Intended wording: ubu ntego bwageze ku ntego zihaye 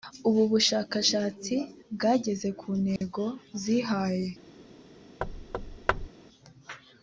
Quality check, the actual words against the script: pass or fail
fail